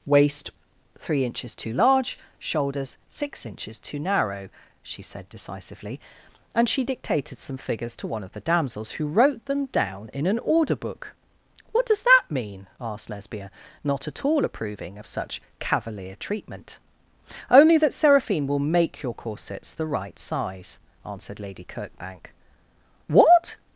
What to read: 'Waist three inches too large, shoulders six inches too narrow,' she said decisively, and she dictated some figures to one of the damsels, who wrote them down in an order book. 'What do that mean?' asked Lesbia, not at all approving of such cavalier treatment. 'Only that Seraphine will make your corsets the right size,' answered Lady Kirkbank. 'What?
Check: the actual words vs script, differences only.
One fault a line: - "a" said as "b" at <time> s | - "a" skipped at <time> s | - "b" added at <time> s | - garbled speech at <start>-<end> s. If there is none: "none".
- "do" said as "does" at 11.8 s